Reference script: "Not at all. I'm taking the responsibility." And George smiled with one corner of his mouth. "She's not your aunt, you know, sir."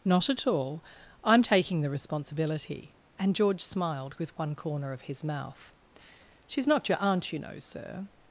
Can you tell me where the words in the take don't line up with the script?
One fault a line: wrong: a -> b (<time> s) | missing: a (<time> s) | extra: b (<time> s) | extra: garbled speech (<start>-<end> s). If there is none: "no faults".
no faults